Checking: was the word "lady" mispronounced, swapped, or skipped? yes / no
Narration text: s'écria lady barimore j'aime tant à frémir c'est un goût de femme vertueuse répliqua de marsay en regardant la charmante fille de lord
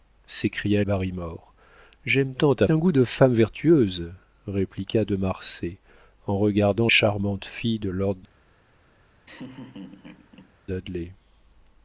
yes